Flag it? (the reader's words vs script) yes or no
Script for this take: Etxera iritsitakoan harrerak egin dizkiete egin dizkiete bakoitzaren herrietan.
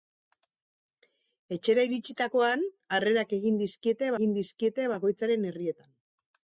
no